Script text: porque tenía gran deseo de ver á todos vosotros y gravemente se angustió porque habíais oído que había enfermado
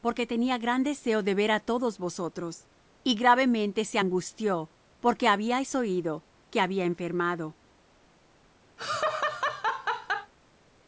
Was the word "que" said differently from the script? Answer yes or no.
no